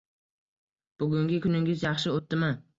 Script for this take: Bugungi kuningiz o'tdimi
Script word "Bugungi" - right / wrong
right